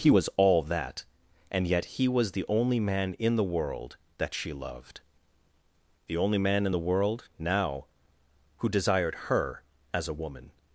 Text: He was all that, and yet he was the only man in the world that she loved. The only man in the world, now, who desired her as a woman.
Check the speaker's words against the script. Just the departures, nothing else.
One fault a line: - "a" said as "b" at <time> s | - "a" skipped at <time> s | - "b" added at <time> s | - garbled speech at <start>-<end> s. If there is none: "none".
none